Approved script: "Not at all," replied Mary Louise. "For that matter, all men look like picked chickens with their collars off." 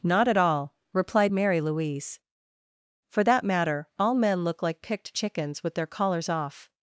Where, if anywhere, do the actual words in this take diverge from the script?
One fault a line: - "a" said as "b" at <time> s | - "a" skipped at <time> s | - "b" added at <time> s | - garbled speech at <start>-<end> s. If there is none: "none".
none